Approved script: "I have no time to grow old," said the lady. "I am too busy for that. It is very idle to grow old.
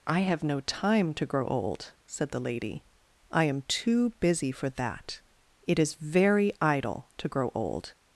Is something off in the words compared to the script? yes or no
no